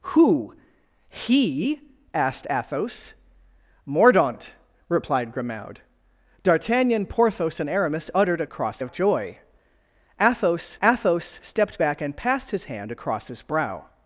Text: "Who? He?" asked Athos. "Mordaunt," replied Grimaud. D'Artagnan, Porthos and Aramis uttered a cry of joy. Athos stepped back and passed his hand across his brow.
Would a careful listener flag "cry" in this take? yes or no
yes